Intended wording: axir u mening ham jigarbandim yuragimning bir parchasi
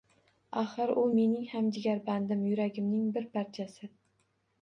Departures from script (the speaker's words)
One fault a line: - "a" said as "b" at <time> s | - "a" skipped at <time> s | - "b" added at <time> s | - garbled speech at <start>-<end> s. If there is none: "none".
none